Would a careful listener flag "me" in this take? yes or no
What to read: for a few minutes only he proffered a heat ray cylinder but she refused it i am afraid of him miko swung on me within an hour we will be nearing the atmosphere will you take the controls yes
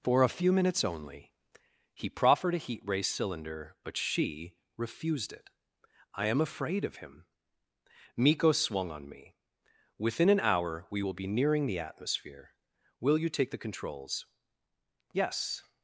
no